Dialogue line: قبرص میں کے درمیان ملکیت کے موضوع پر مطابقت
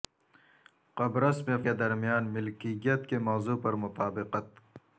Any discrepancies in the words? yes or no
no